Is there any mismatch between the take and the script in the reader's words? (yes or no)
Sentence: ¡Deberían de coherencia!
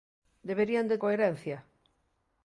no